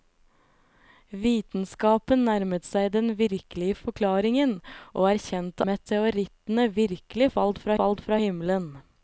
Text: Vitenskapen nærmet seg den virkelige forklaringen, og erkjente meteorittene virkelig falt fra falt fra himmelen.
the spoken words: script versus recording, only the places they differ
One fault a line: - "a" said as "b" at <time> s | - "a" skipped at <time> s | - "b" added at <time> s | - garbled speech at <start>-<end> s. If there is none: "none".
none